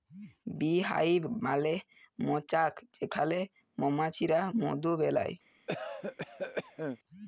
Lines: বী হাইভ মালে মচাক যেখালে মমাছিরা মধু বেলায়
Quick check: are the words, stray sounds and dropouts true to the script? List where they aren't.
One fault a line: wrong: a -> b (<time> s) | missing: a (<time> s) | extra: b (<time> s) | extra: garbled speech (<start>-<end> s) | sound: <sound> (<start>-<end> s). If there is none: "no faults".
sound: cough (5.7-7.0 s)